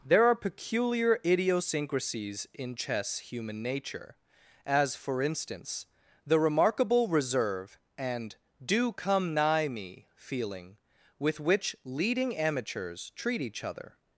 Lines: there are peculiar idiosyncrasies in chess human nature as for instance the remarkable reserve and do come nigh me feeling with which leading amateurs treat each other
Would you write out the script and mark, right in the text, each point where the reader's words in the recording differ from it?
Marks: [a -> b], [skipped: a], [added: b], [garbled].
there are peculiar idiosyncrasies in chess human nature as for instance the remarkable reserve and do come nigh me feeling with which leading amateurs treat each other